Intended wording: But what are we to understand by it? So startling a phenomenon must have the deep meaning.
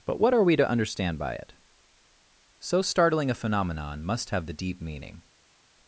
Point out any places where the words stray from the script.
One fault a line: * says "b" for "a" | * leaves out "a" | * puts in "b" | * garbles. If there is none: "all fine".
all fine